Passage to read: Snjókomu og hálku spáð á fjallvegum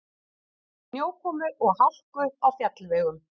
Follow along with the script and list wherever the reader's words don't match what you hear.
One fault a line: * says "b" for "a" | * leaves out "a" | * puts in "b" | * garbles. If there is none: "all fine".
* leaves out "spáð"